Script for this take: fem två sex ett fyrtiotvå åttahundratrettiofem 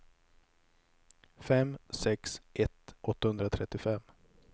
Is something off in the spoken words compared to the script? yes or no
yes